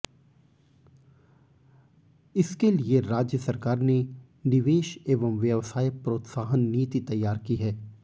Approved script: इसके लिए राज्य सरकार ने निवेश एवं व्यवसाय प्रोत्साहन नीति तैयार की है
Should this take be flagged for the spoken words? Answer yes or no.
no